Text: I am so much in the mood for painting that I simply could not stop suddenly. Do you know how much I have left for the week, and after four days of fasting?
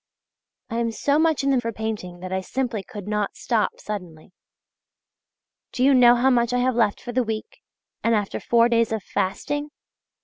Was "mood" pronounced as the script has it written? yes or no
no